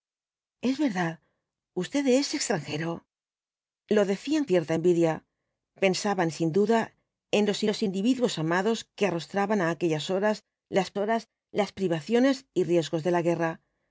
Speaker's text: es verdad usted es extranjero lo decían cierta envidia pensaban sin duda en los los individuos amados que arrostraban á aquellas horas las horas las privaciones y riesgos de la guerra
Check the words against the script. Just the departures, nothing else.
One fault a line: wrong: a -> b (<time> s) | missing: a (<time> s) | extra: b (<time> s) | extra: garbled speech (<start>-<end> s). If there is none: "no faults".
no faults